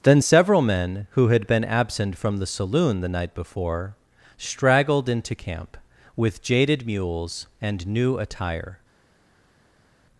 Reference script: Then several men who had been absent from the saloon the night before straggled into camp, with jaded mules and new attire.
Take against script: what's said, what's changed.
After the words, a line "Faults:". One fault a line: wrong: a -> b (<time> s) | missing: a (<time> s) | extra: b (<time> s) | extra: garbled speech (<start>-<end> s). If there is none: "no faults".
Then several men who had been absent from the saloon the night before straggled into camp, with jaded mules and new attire.
Faults:
no faults